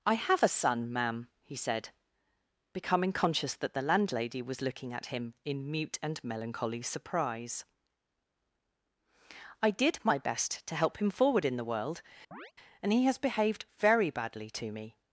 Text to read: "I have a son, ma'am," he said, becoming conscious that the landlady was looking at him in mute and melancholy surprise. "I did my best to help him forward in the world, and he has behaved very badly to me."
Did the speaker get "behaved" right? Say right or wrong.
right